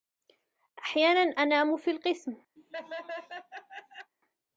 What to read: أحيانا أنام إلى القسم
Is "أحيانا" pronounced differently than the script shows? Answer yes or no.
no